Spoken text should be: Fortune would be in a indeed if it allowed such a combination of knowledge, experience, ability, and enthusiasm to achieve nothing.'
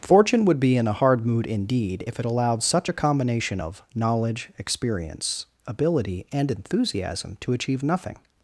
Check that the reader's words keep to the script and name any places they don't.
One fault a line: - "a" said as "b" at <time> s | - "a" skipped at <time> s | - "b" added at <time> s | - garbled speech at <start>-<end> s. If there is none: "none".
- "hard mood" added at 0.9 s